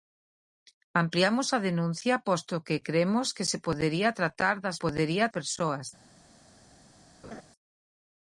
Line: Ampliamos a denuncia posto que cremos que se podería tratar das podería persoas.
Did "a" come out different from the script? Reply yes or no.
no